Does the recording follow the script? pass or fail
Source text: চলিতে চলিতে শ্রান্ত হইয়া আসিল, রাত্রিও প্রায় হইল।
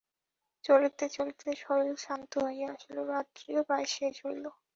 fail